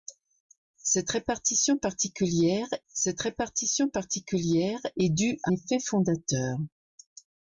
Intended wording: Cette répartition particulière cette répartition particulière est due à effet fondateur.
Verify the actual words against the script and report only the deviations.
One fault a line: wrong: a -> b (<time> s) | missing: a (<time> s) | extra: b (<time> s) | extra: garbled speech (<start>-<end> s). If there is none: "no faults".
no faults